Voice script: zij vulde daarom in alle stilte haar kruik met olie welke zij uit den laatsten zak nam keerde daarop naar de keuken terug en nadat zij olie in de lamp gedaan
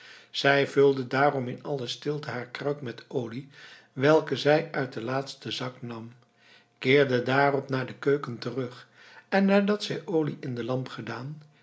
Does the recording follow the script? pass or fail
pass